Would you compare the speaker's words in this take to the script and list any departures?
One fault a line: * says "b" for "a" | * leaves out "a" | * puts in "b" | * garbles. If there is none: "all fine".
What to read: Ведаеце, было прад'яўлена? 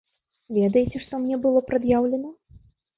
* puts in "што мне"